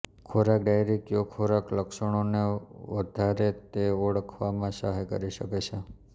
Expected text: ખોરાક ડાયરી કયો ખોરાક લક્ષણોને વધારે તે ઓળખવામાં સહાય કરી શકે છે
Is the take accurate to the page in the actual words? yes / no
yes